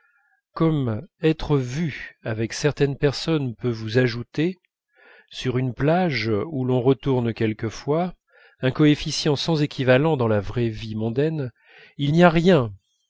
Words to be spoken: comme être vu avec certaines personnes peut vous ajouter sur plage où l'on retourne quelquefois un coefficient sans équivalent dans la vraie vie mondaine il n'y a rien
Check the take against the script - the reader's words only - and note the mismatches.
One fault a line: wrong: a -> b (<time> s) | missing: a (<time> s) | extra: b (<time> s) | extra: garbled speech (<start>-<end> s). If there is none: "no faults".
extra: une (5.6 s)